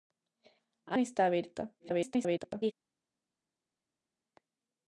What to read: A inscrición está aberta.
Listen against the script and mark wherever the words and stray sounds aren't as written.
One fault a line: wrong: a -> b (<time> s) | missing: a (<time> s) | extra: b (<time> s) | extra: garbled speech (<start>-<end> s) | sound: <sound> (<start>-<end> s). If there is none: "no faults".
missing: inscrición (1.0 s)
extra: garbled speech (1.8-2.7 s)